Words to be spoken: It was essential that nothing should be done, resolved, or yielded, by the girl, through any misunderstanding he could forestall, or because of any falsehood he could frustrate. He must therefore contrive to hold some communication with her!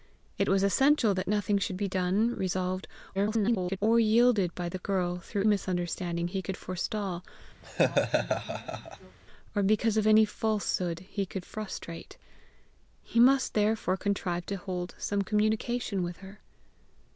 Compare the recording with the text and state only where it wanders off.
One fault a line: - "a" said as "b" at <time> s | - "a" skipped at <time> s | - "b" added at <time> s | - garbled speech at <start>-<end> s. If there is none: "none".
- garbled speech at 3.1-3.8 s
- "any" skipped at 5.4 s